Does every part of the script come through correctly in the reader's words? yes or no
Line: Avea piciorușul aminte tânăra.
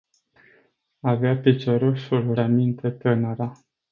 yes